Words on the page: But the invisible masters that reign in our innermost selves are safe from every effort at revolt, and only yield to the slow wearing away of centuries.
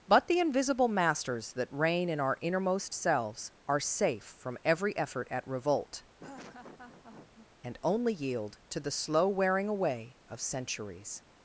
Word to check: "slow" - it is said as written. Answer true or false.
true